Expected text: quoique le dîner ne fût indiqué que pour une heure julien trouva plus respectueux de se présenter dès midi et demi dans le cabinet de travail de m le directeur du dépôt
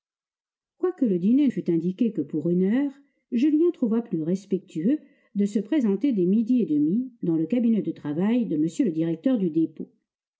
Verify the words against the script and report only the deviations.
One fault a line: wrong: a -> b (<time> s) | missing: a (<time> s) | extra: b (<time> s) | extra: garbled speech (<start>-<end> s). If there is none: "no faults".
missing: ne (1.5 s)